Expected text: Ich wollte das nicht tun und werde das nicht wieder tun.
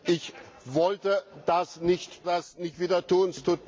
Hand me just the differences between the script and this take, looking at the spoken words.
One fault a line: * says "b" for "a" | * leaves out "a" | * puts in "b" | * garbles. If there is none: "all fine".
* leaves out "tun und werde"